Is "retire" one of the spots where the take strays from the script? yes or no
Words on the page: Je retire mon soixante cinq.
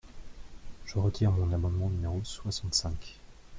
no